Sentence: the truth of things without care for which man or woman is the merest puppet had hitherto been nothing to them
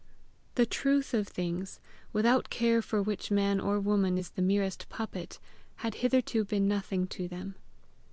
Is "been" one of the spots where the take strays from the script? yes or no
no